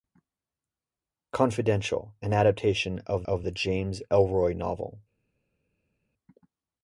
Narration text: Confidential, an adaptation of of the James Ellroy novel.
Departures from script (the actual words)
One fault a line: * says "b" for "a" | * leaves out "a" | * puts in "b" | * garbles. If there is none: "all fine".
all fine